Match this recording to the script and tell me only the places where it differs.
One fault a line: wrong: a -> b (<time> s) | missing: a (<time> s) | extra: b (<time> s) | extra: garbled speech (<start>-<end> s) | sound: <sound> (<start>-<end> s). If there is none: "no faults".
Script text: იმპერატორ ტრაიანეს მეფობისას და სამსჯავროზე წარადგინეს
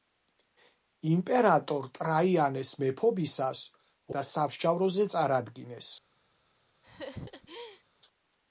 sound: laugh (6.8-7.8 s)